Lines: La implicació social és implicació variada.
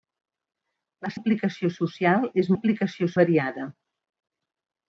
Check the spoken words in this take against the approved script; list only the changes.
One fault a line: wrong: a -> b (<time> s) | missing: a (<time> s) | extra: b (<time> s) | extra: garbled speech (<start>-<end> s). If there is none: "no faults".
no faults